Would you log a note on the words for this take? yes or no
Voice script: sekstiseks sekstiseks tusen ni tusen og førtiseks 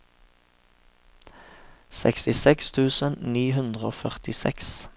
yes